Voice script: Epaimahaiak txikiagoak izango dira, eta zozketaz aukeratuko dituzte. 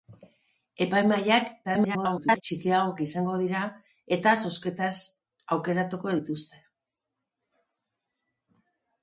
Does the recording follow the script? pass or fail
fail